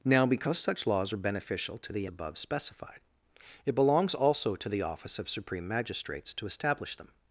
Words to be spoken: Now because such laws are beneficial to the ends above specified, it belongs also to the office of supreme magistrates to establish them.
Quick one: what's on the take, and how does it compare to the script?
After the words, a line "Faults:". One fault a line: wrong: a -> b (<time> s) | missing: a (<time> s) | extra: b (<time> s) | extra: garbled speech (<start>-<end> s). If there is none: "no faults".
Now because such laws are beneficial to the above specified, it belongs also to the office of supreme magistrates to establish them.
Faults:
missing: ends (2.1 s)